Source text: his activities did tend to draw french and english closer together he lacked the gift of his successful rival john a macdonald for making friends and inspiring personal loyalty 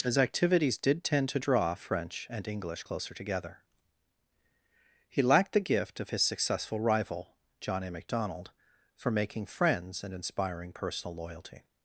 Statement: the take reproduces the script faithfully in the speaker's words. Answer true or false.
true